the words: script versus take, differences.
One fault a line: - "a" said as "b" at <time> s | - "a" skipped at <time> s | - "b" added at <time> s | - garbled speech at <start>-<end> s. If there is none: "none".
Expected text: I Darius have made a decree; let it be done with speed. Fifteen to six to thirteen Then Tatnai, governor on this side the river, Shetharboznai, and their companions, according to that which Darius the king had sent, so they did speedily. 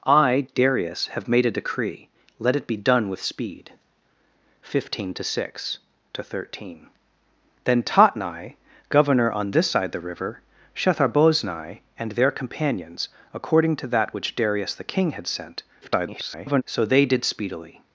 - garbled speech at 15.8-16.6 s